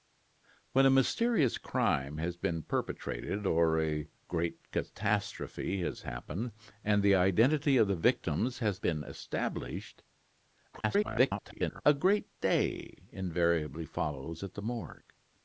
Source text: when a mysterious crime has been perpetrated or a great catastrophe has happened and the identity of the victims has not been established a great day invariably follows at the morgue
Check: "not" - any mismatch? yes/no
yes